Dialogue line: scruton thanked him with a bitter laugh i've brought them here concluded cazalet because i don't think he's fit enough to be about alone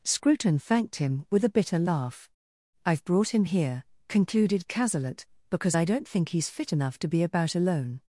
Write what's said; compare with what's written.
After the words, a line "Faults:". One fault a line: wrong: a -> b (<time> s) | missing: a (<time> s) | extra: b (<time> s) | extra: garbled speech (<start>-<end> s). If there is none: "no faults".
scruton thanked him with a bitter laugh i've brought him here concluded cazalet because i don't think he's fit enough to be about alone
Faults:
wrong: them -> him (3.3 s)